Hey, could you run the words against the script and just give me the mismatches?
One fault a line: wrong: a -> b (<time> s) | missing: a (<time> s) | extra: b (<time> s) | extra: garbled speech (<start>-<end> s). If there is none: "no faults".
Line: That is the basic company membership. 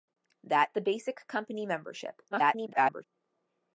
missing: is (0.7 s)
extra: garbled speech (2.3-3.0 s)